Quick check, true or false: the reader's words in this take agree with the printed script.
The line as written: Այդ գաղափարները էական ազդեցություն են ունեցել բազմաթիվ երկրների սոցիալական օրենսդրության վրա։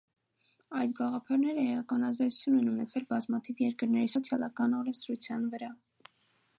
true